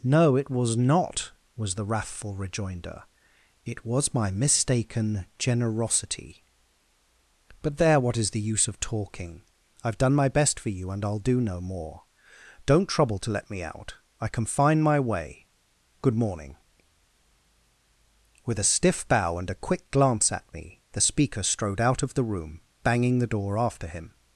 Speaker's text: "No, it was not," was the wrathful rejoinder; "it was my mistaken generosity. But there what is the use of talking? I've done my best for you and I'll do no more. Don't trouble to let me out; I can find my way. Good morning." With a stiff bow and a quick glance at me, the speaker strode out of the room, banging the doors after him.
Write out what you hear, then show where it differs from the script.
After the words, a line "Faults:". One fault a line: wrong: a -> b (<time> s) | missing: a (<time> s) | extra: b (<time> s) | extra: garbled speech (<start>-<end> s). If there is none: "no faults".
"No, it was not," was the wrathful rejoinder; "it was my mistaken generosity. But there what is the use of talking? I've done my best for you and I'll do no more. Don't trouble to let me out; I can find my way. Good morning." With a stiff bow and a quick glance at me, the speaker strode out of the room, banging the door after him.
Faults:
wrong: doors -> door (23.3 s)